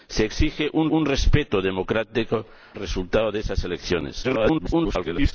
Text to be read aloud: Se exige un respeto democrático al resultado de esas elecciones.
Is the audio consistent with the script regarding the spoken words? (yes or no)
no